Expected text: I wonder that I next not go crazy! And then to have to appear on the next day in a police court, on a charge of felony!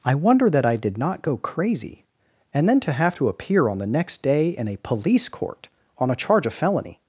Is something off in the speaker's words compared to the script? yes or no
yes